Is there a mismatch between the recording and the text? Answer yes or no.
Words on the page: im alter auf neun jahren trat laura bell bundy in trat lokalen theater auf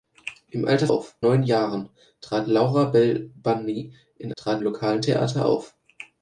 no